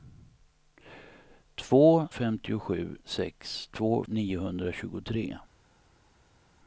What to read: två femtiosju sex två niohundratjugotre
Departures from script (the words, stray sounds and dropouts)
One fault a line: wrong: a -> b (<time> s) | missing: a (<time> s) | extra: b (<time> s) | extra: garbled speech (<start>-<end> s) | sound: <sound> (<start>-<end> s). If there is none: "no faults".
no faults